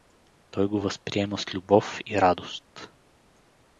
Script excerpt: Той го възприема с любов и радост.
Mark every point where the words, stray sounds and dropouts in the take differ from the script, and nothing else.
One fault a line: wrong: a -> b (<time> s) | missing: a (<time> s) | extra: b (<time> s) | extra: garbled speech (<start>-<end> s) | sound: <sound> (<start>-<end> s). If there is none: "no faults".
no faults